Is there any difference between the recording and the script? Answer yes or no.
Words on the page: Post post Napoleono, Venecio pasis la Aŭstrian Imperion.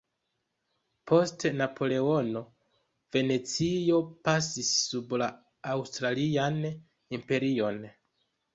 yes